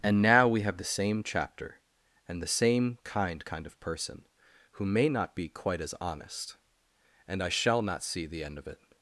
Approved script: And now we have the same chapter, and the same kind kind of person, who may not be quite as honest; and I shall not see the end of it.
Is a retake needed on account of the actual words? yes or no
no